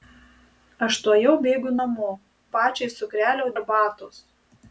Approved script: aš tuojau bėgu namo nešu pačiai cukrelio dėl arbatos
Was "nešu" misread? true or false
true